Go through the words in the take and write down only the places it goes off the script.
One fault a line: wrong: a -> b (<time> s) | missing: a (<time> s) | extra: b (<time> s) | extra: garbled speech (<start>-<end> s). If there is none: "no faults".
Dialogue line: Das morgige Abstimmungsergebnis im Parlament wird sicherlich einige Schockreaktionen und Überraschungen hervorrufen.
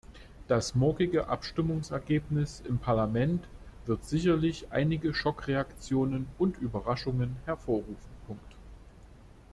no faults